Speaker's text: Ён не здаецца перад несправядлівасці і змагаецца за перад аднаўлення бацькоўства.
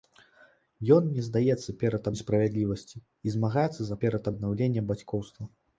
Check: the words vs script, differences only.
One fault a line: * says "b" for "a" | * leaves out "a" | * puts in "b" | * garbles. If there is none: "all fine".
all fine